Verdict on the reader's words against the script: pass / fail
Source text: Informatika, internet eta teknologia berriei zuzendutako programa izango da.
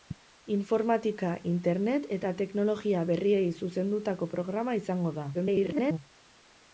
fail